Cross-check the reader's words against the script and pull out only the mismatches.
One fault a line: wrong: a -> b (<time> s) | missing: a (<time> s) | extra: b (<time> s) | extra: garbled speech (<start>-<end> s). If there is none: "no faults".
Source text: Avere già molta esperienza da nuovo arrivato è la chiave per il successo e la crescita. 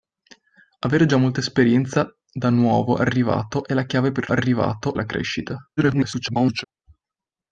wrong: successo -> arrivato (4.3 s)
extra: garbled speech (5.8-6.6 s)